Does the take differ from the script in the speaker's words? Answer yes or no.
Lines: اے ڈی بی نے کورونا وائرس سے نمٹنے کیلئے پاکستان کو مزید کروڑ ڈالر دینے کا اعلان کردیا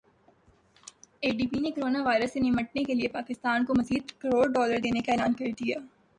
no